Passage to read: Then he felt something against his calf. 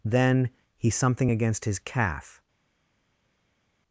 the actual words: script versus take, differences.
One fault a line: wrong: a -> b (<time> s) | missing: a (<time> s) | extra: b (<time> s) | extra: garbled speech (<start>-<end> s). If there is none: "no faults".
missing: felt (0.9 s)